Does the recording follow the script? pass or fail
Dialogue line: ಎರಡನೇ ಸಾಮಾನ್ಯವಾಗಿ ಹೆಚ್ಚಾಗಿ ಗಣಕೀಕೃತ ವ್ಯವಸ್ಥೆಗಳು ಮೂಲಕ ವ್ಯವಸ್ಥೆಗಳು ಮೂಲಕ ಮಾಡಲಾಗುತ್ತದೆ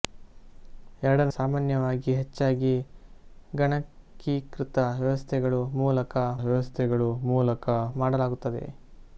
pass